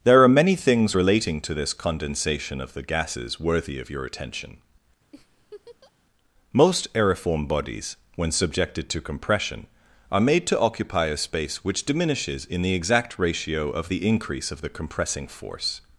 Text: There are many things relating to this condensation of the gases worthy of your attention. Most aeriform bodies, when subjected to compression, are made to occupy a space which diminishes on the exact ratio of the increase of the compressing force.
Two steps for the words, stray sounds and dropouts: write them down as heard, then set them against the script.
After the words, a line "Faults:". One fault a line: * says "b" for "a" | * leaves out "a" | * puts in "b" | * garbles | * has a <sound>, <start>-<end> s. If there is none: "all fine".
There are many things relating to this condensation of the gases worthy of your attention. Most aeriform bodies, when subjected to compression, are made to occupy a space which diminishes in the exact ratio of the increase of the compressing force.
Faults:
* has a laugh, 5.1-5.9 s
* says "in" for "on"